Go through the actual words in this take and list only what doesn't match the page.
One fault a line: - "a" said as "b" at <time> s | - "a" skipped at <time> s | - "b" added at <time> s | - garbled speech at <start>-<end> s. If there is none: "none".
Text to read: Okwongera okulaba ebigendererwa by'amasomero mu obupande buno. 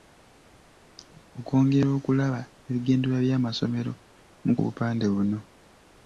none